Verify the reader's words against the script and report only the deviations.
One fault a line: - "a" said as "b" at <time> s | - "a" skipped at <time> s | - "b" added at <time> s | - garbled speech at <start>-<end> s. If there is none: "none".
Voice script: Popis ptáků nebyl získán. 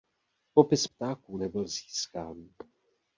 none